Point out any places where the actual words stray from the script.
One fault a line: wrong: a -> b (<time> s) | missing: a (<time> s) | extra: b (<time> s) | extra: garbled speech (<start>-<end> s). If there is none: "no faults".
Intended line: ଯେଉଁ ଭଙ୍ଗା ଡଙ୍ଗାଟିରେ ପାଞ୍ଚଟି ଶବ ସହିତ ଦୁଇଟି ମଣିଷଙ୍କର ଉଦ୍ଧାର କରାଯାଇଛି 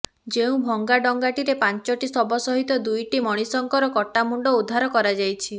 extra: କଟା ମୁଣ୍ଡ (3.9 s)